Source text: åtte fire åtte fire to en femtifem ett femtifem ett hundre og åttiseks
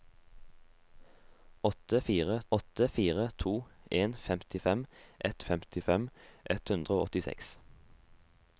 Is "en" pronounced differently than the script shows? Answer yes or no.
no